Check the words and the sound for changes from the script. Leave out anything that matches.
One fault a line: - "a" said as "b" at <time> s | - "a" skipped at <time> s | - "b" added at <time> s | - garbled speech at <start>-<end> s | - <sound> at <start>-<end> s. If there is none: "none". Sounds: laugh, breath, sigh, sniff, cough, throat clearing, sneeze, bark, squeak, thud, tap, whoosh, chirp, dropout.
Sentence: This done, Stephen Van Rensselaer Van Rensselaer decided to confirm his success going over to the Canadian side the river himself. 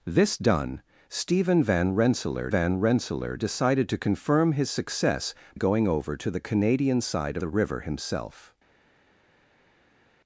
none